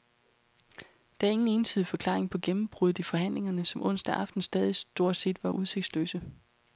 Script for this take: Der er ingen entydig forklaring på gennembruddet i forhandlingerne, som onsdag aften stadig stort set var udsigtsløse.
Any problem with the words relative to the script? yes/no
no